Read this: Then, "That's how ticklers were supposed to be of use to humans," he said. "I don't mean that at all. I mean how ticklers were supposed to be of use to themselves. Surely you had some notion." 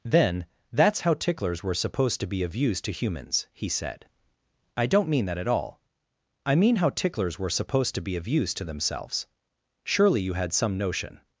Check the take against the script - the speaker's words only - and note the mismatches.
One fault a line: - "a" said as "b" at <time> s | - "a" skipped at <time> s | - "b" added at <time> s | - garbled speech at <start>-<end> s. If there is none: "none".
none